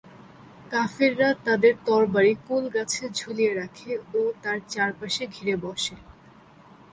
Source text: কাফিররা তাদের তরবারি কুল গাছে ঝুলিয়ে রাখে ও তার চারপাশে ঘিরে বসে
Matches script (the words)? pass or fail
pass